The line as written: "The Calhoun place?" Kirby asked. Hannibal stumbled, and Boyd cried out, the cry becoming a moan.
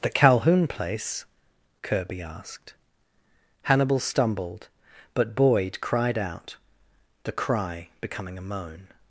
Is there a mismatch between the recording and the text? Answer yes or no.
yes